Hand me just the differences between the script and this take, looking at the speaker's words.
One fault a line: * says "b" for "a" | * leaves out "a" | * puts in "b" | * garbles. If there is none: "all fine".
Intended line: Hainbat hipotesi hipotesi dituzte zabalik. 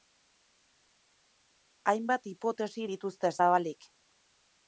* leaves out "hipotesi"